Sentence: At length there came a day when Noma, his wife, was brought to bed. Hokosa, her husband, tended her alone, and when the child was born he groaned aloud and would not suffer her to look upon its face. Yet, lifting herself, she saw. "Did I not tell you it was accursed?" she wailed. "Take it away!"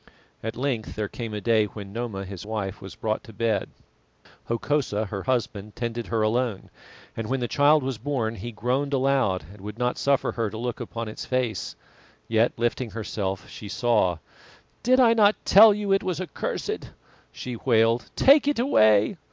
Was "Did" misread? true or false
false